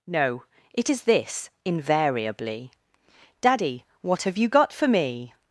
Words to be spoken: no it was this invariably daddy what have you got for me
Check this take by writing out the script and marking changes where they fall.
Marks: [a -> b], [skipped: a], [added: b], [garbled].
no it [was -> is] this invariably daddy what have you got for me